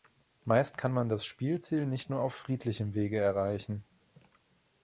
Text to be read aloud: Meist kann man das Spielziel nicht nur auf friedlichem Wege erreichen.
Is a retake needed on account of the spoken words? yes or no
no